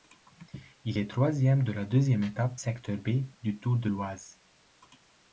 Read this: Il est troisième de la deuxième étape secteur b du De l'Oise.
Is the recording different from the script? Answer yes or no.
yes